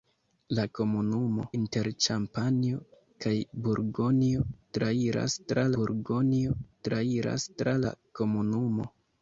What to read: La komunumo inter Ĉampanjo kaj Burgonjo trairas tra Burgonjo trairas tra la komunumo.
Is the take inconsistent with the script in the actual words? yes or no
no